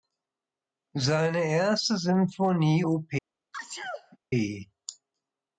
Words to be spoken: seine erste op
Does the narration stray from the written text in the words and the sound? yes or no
yes